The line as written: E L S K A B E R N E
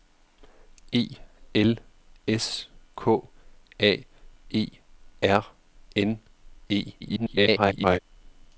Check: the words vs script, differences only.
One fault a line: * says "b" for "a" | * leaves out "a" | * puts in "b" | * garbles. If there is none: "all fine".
* leaves out "B"
* garbles